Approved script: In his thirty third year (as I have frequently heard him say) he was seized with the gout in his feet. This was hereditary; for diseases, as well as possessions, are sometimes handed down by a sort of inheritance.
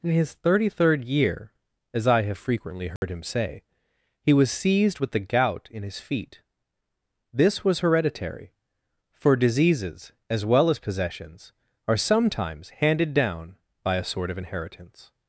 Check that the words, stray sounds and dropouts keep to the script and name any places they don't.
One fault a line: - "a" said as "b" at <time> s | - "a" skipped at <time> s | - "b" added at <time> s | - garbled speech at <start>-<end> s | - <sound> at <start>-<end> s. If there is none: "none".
- dropout at 3.0-3.0 s